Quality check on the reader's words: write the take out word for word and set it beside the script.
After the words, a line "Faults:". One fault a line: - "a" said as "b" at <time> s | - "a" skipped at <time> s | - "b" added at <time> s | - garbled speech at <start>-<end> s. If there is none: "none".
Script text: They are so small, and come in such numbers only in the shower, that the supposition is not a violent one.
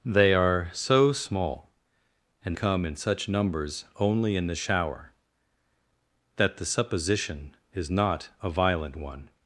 They are so small, and come in such numbers only in the shower, that the supposition is not a violent one.
Faults:
none